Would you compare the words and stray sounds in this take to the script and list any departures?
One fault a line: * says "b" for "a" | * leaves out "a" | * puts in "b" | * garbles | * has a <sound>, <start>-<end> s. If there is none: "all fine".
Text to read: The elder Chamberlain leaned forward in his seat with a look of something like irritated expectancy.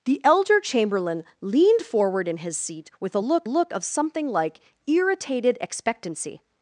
* puts in "look"